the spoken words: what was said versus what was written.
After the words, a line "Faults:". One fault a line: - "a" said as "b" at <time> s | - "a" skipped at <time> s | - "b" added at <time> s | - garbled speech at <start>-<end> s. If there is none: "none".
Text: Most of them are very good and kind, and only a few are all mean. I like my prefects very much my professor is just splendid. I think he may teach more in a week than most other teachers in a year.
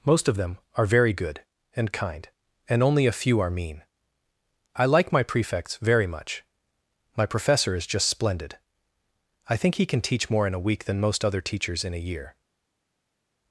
Most of them are very good and kind, and only a few are mean. I like my prefects very much my professor is just splendid. I think he can teach more in a week than most other teachers in a year.
Faults:
- "all" skipped at 3.5 s
- "may" said as "can" at 9.8 s